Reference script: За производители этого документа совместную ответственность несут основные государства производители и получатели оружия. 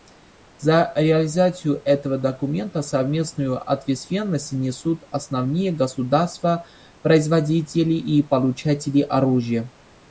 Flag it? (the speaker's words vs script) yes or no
yes